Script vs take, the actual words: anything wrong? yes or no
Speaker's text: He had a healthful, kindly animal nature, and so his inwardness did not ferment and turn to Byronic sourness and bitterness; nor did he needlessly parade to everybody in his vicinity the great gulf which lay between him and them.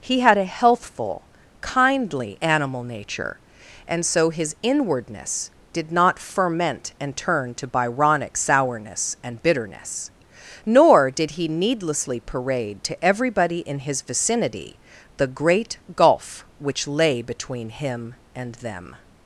no